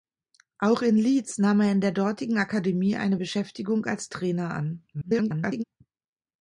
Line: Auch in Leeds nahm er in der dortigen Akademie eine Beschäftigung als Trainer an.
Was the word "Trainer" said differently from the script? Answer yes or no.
no